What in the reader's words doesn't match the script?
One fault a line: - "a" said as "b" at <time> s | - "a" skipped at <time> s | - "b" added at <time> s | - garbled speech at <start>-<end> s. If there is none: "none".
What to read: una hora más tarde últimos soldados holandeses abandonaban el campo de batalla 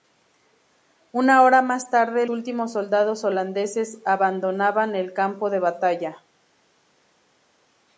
none